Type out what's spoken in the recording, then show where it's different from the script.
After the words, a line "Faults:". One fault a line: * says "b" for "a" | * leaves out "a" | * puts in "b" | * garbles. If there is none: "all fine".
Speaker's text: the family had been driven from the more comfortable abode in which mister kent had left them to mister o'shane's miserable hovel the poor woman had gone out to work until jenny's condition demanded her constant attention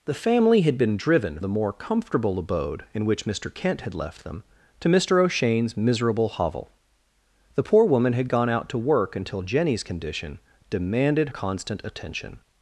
the family had been driven the more comfortable abode in which mister kent had left them to mister o'shane's miserable hovel the poor woman had gone out to work until jenny's condition demanded constant attention
Faults:
* leaves out "from"
* leaves out "her"